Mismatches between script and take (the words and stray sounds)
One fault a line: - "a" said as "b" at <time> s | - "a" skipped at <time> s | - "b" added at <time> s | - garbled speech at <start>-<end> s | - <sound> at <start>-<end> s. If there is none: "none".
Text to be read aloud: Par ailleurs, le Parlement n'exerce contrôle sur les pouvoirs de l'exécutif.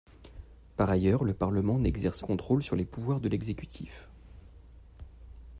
none